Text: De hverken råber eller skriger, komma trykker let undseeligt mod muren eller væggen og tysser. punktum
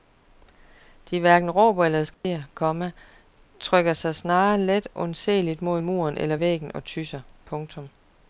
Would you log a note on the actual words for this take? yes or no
yes